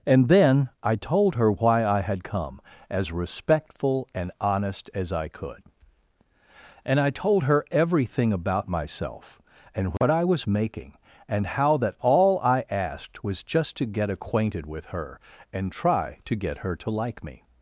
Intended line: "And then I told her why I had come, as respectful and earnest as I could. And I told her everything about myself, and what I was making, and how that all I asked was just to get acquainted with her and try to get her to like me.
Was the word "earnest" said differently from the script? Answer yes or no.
yes